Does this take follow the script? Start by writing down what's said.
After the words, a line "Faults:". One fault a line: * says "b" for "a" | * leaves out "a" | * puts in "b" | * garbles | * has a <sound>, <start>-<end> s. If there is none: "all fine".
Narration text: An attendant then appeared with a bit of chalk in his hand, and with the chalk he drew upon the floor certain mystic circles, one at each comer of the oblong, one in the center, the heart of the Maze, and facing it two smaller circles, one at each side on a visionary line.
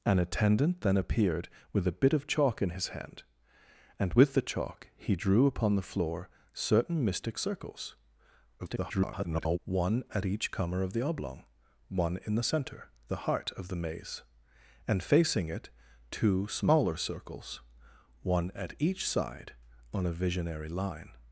An attendant then appeared with a bit of chalk in his hand, and with the chalk he drew upon the floor certain mystic circles, [garbled] one at each comer of the oblong, one in the center, the heart of the Maze, and facing it two smaller circles, one at each side on a visionary line.
Faults:
* garbles